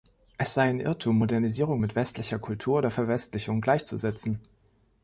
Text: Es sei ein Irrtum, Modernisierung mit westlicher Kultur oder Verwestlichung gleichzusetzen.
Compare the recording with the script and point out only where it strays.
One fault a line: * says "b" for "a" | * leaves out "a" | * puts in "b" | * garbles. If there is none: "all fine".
all fine